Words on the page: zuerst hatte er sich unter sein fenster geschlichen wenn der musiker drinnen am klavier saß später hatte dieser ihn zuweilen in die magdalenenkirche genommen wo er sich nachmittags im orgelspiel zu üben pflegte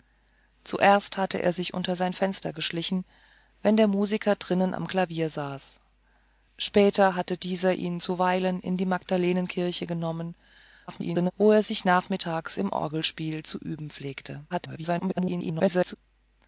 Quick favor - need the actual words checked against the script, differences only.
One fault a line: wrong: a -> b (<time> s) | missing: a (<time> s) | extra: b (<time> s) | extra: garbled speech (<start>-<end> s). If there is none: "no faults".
extra: garbled speech (10.9-11.3 s)
extra: garbled speech (14.5-16.0 s)